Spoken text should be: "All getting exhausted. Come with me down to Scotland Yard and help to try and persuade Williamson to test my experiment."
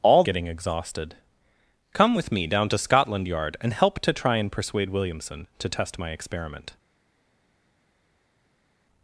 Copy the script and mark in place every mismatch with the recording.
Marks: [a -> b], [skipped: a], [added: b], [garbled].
"All getting exhausted. Come with me down to Scotland Yard and help to try and persuade Williamson to test my experiment."